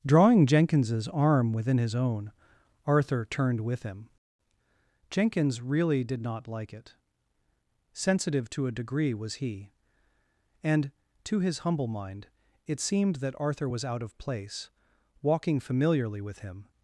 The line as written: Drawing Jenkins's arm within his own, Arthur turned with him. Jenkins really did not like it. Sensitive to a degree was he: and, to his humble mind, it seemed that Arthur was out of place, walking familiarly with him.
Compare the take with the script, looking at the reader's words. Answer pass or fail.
pass